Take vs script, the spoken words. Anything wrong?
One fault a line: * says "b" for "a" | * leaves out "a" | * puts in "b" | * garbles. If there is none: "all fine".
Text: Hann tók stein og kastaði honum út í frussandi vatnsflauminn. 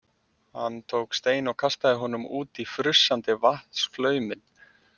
all fine